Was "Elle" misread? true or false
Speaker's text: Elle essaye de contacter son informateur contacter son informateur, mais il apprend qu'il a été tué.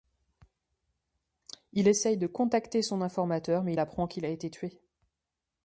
true